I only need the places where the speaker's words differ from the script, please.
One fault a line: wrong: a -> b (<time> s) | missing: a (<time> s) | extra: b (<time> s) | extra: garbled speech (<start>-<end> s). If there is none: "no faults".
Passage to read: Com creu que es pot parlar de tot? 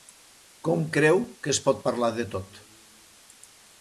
no faults